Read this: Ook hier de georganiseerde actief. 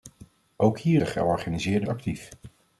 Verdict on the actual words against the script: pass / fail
pass